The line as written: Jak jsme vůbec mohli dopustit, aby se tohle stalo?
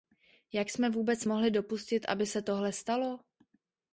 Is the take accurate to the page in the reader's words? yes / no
yes